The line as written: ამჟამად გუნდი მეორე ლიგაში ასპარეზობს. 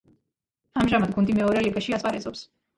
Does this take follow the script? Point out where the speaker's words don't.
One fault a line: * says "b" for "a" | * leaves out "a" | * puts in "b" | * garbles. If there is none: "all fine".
all fine